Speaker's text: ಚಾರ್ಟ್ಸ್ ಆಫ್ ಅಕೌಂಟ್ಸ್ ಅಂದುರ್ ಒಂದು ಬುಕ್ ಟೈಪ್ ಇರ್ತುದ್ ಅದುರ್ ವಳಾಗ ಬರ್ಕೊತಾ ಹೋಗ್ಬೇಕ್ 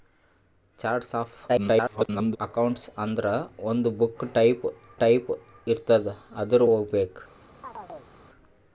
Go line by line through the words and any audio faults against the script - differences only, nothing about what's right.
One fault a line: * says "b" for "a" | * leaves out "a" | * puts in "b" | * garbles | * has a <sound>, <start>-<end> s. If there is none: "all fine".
* garbles
* puts in "ಟೈಪ್"
* leaves out "ವಳಾಗ ಬರ್ಕೊತಾ"
* has a chirp, 7.6-8.1 s